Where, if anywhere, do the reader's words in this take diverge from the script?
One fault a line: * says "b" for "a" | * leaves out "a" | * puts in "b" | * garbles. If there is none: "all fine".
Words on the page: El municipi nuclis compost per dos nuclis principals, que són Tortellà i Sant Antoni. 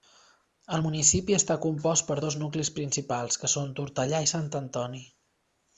* says "està" for "nuclis"